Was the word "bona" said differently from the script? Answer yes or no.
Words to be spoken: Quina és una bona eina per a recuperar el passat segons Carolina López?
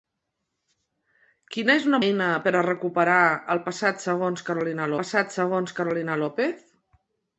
yes